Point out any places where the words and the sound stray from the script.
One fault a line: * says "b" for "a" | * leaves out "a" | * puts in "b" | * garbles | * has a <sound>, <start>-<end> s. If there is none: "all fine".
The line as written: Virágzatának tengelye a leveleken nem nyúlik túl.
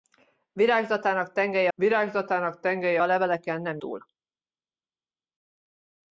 * puts in "virágzatának tengelye"
* leaves out "nyúlik"